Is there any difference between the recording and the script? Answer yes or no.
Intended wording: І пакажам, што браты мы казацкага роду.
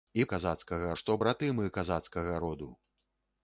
yes